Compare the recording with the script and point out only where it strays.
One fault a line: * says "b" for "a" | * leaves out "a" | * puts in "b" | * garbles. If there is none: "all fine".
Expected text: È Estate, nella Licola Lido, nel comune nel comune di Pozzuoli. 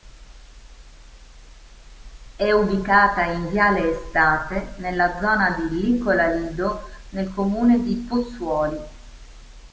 * puts in "ubicata in viale"
* puts in "zona di"
* leaves out "nel comune"